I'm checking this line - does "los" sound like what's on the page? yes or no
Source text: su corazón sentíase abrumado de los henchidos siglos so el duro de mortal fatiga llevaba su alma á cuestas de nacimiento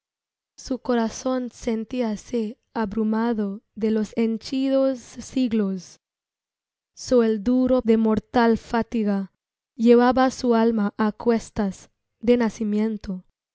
yes